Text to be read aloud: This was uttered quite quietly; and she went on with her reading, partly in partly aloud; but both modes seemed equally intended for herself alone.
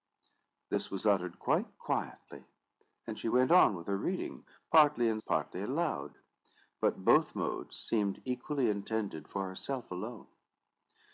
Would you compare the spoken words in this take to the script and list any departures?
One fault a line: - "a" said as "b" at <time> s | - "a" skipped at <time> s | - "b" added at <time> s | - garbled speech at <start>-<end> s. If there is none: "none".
none